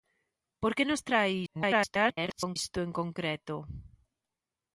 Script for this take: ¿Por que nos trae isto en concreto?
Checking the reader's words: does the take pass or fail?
fail